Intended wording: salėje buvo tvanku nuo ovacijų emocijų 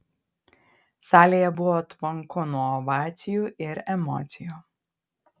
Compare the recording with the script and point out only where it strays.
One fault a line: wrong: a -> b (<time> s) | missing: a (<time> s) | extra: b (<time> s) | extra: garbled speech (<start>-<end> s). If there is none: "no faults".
extra: ir (3.7 s)